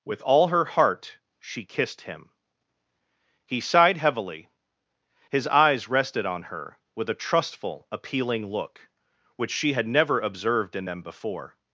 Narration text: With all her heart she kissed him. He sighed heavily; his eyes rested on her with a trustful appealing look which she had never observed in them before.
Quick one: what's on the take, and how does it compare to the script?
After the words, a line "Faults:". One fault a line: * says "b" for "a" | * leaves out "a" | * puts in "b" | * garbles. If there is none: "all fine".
With all her heart she kissed him. He sighed heavily; his eyes rested on her with a trustful appealing look which she had never observed in them before.
Faults:
all fine